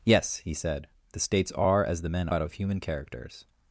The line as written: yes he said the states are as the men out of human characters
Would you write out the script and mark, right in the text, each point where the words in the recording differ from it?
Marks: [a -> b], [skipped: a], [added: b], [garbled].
yes he said the states are as the men out of human characters